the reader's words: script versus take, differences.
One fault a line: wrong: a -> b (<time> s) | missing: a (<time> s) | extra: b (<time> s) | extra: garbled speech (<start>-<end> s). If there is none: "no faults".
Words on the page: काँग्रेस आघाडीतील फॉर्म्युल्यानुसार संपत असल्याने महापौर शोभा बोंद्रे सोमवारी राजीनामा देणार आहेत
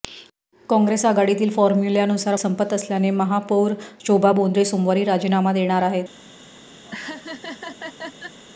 no faults